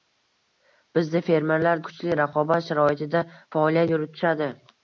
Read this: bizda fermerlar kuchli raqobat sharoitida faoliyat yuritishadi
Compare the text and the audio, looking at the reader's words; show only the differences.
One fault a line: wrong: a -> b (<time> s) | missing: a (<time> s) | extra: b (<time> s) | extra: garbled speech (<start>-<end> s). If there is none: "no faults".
no faults